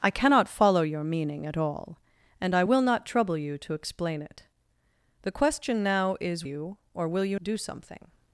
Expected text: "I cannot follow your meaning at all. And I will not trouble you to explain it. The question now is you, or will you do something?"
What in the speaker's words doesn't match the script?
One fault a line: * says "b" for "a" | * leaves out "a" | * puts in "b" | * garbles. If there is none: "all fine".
all fine